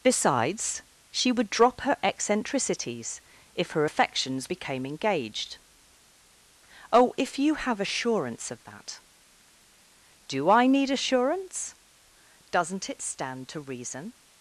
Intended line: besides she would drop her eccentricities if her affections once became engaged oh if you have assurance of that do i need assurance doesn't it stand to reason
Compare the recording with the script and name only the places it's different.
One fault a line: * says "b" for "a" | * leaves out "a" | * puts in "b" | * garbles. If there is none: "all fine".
* leaves out "once"